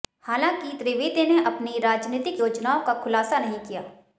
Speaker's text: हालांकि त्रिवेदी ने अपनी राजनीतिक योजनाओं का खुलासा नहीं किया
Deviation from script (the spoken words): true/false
false